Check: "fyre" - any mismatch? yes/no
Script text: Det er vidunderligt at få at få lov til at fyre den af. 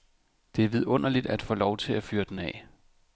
no